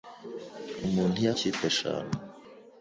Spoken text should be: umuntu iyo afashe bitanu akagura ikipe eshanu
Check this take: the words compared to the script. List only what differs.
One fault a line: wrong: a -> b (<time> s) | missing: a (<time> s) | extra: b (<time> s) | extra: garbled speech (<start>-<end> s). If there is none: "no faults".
missing: afashe bitanu akagura (1.3 s)